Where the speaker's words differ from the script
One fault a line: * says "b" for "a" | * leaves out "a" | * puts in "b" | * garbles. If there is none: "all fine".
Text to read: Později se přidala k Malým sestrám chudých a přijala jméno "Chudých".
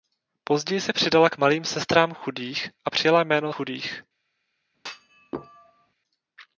all fine